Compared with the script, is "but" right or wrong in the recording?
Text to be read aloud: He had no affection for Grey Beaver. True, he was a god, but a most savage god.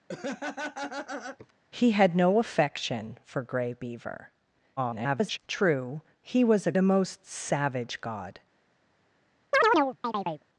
wrong